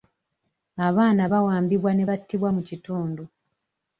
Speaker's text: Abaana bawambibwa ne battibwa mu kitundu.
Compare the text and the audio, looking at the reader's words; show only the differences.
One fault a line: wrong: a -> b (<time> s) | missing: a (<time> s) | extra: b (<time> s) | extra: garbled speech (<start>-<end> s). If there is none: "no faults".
no faults